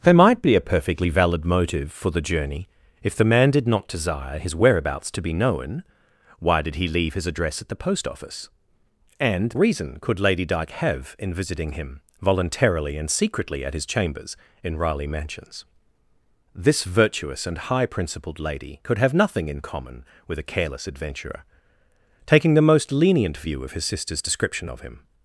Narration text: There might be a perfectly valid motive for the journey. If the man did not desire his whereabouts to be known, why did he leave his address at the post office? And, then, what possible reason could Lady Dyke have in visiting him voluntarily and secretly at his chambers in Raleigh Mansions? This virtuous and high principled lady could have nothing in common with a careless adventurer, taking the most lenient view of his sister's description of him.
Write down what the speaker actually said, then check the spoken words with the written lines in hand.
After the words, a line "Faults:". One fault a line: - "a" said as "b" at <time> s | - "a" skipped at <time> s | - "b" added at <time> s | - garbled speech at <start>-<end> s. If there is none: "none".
There might be a perfectly valid motive for the journey. If the man did not desire his whereabouts to be known, why did he leave his address at the post office? And, reason could Lady Dyke have in visiting him voluntarily and secretly at his chambers in Raleigh Mansions? This virtuous and high principled lady could have nothing in common with a careless adventurer, taking the most lenient view of his sister's description of him.
Faults:
- "then what possible" skipped at 9.5 s